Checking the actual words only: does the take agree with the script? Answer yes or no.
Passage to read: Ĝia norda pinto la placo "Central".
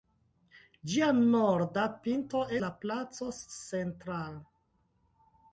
yes